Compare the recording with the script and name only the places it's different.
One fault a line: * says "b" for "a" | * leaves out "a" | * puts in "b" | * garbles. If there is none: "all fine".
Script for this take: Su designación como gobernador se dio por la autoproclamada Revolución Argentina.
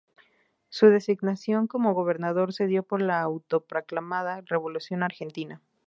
all fine